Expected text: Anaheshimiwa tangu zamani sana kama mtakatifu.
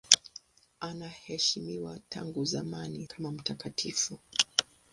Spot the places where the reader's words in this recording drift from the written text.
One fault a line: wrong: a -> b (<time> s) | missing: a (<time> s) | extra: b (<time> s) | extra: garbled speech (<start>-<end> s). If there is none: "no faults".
missing: sana (3.1 s)